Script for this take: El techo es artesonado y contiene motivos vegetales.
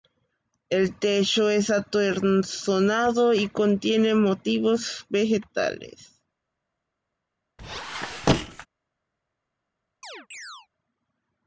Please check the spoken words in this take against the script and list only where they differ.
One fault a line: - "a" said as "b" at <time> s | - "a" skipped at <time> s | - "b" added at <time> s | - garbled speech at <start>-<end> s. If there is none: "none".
none